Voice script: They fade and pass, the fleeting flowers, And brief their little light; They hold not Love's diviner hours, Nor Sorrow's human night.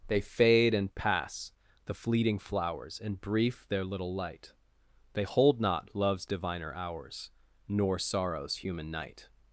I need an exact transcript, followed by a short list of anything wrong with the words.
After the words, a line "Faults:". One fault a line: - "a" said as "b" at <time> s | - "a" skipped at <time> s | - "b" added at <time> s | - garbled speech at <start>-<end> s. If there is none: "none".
They fade and pass, the fleeting flowers, And brief their little light; They hold not Love's diviner hours, Nor Sorrow's human night.
Faults:
none